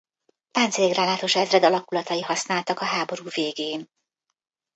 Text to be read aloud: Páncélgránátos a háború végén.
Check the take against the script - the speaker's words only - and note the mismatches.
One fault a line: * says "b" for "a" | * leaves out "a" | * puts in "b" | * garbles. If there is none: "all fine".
* puts in "ezred alakulatai használtak"